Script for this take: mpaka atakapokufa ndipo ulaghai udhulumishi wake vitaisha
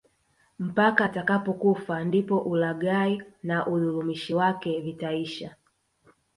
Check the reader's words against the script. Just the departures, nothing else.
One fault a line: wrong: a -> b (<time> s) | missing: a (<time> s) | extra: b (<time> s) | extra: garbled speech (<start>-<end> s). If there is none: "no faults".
extra: na (3.4 s)